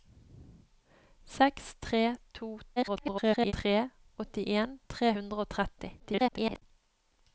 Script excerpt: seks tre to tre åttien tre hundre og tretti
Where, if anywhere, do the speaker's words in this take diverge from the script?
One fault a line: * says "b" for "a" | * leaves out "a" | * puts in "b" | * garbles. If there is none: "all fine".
* garbles
* garbles